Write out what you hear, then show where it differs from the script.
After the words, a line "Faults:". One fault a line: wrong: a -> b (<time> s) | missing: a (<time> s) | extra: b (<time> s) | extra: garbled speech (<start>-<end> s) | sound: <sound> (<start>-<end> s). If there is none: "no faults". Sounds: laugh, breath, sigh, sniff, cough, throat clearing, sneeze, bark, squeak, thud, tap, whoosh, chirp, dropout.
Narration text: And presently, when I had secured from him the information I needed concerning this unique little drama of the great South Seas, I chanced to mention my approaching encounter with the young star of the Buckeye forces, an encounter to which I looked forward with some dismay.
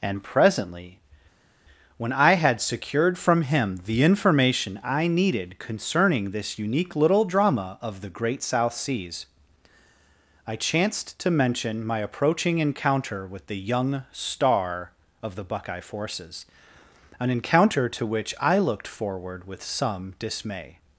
And presently, when I had secured from him the information I needed concerning this unique little drama of the great South Seas, I chanced to mention my approaching encounter with the young star of the Buckeye forces, an encounter to which I looked forward with some dismay.
Faults:
no faults